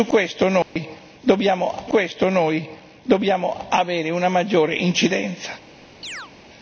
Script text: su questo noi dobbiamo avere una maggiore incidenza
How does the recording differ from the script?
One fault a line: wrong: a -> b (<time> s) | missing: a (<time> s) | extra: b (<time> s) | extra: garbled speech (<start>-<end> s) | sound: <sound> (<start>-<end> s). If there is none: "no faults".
sound: dropout (0.6-0.8 s)
extra: questo noi dobbiamo (1.9 s)
sound: chirp (6.0-6.3 s)